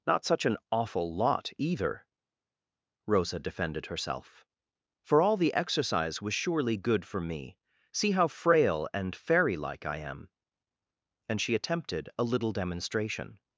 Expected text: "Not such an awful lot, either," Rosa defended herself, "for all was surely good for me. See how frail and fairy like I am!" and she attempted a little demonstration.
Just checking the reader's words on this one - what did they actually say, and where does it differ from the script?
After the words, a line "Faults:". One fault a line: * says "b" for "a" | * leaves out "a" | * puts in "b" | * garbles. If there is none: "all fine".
"Not such an awful lot, either," Rosa defended herself, "for all the exercise was surely good for me. See how frail and fairy like I am!" and she attempted a little demonstration.
Faults:
* puts in "the exercise"